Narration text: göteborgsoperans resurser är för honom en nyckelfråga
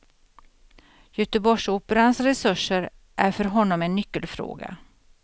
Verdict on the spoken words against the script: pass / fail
pass